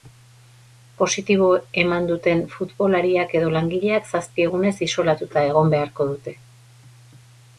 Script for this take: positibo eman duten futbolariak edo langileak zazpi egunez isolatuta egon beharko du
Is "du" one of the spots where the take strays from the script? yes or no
yes